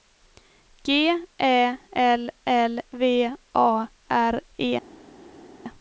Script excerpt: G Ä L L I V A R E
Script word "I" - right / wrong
wrong